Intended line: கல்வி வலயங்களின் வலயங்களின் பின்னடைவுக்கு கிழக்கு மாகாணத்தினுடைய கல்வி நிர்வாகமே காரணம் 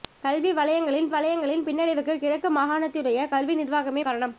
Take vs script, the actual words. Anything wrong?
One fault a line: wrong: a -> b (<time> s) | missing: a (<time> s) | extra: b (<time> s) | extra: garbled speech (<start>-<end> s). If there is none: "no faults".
no faults